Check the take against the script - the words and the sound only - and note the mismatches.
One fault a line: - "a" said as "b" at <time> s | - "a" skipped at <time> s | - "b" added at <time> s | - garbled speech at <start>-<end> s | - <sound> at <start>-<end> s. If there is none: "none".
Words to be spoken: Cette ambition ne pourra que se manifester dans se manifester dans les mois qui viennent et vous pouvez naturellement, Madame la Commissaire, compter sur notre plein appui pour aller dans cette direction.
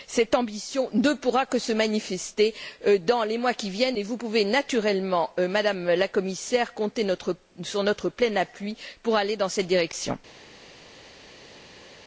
- "se manifester dans" skipped at 3.2 s